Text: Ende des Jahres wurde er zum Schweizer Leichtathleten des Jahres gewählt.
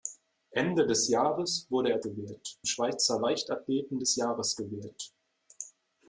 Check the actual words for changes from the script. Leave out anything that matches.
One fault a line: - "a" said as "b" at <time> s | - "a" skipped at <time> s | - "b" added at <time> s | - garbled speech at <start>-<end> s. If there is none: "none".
- "zum" said as "gewählt" at 2.0 s